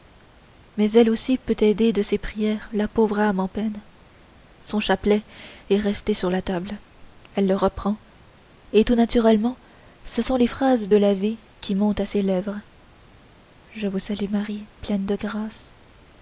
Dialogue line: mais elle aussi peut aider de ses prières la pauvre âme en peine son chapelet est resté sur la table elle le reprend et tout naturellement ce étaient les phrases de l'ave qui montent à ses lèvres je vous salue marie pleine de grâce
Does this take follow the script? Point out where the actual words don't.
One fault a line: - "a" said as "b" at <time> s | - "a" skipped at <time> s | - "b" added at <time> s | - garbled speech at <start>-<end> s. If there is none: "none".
- "étaient" said as "sont" at 10.2 s